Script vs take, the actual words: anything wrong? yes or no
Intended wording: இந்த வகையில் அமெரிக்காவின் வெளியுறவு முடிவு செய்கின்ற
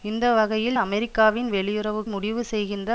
no